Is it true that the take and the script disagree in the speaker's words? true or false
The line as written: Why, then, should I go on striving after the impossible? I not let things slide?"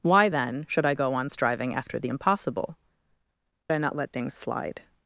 false